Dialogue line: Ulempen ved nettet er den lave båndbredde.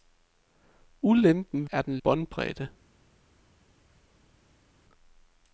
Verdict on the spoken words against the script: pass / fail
fail